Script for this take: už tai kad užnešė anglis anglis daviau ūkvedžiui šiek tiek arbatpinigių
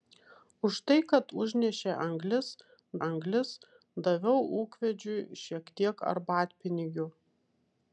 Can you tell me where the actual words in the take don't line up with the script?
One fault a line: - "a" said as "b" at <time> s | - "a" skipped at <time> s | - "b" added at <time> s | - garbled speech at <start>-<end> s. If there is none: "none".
none